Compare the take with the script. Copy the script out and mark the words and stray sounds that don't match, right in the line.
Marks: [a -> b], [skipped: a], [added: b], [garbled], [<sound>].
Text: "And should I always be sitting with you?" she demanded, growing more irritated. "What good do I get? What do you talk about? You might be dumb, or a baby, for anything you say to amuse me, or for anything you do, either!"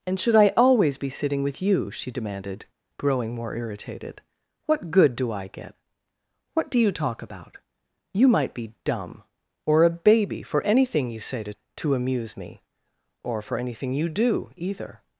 "And should I always be sitting with you?" she demanded, growing more irritated. "What good do I get? What do you talk about? You might be dumb, or a baby, for anything you say to [added: to] amuse me, or for anything you do, either!"